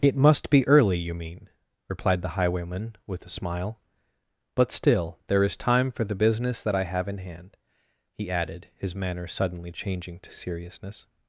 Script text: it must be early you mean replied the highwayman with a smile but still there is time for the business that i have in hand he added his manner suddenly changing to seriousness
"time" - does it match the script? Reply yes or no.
yes